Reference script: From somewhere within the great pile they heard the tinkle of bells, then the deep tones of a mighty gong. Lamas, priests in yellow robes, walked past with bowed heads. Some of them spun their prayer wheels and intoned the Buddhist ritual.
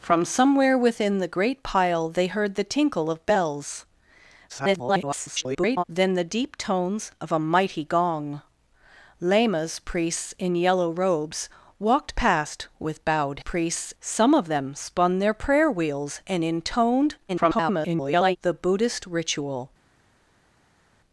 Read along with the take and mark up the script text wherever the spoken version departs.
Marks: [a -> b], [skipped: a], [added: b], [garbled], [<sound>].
From somewhere within the great pile they heard the tinkle of bells, [garbled] then the deep tones of a mighty gong. Lamas, priests in yellow robes, walked past with bowed [heads. -> priests] Some of them spun their prayer wheels and intoned [garbled] the Buddhist ritual.